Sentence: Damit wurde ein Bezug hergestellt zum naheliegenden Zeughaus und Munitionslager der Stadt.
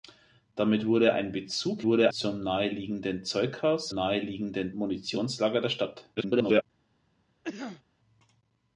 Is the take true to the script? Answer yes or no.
no